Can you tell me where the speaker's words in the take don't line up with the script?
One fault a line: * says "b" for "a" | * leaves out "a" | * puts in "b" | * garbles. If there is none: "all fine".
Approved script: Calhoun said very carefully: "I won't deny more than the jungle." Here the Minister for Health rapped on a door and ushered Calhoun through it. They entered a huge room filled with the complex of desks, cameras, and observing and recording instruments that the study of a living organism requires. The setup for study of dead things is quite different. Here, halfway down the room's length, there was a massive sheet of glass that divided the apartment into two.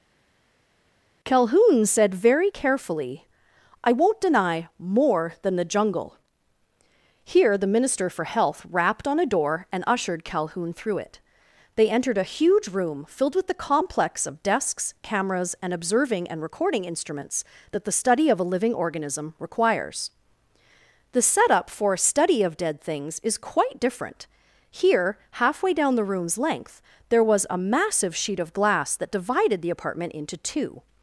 * puts in "a"